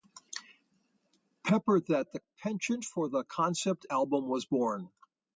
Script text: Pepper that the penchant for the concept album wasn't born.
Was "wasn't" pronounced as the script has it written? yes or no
no